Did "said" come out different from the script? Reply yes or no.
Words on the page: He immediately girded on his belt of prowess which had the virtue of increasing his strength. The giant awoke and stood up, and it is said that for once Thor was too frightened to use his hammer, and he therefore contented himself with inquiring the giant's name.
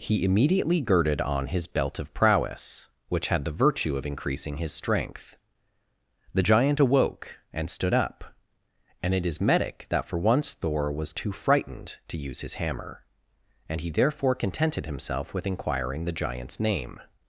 yes